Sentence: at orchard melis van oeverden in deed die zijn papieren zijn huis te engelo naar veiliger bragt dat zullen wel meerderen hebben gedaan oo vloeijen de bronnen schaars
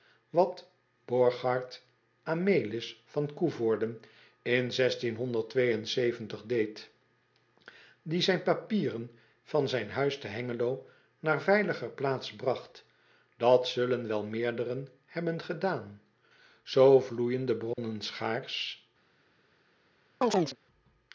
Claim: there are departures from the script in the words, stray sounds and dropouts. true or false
true